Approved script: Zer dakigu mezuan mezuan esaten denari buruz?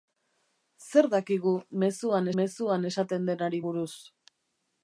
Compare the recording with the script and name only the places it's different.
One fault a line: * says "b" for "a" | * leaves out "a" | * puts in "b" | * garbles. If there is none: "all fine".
all fine